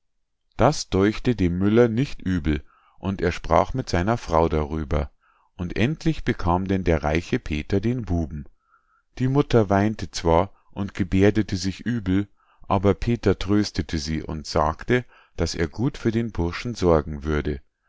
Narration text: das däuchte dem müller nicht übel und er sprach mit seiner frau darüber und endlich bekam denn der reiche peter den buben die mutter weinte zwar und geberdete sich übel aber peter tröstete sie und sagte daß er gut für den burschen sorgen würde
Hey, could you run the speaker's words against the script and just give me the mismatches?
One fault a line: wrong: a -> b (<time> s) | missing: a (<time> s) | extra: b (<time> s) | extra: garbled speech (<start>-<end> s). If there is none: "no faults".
no faults